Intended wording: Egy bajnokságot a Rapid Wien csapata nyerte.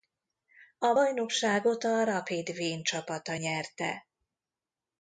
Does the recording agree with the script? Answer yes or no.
no